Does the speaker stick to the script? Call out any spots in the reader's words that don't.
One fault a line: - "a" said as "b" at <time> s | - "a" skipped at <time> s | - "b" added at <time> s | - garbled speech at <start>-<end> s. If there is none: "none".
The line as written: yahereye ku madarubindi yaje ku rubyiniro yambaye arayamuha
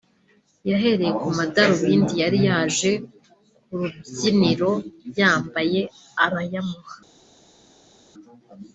- "yari" added at 2.2 s